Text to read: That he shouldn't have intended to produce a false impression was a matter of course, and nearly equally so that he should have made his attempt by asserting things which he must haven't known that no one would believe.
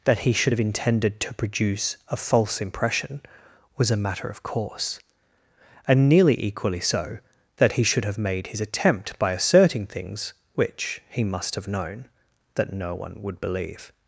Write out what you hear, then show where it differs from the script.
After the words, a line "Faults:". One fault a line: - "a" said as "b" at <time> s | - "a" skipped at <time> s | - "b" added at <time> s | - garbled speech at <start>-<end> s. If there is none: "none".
That he should have intended to produce a false impression was a matter of course, and nearly equally so that he should have made his attempt by asserting things which he must have known that no one would believe.
Faults:
- "shouldn't" said as "should" at 0.3 s
- "haven't" said as "have" at 11.5 s